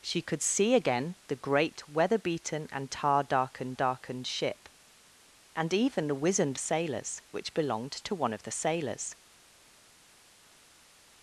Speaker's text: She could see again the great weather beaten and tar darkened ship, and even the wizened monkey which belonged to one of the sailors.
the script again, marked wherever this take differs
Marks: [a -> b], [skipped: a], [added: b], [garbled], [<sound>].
She could see again the great weather beaten and tar darkened [added: darkened] ship, and even the wizened [monkey -> sailors] which belonged to one of the sailors.